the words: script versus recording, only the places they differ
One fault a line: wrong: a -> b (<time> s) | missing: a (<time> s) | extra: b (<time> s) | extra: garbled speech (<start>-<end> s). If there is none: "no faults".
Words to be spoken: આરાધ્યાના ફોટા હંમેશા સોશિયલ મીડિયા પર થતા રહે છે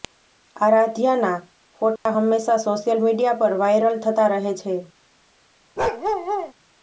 extra: વાયરલ (3.6 s)